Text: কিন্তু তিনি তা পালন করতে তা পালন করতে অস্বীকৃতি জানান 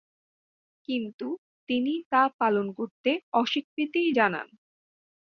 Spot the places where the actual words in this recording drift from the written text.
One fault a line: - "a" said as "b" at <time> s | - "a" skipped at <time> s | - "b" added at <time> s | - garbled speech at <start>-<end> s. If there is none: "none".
- "তা পালন করতে" skipped at 3.1 s